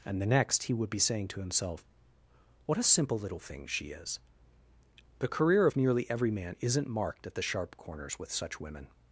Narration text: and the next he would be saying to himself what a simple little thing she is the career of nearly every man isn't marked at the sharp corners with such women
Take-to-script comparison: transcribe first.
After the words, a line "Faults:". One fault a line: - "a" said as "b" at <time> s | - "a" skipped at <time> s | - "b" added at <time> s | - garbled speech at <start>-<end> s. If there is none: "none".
and the next he would be saying to himself what a simple little thing she is the career of nearly every man isn't marked at the sharp corners with such women
Faults:
none